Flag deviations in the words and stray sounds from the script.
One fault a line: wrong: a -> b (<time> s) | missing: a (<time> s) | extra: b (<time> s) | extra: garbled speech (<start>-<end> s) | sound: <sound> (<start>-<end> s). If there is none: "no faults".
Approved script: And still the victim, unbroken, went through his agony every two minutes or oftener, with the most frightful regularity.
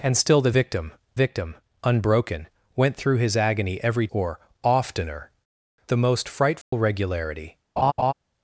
extra: victim (1.1 s)
missing: two minutes (4.1 s)
missing: with (5.3 s)
sound: dropout (6.6-6.7 s)
sound: laugh (7.8-8.1 s)